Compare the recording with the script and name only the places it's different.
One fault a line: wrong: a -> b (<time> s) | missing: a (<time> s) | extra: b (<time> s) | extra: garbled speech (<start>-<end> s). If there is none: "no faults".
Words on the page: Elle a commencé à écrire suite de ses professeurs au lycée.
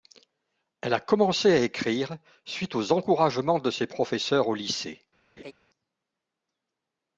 extra: aux encouragements (2.7 s)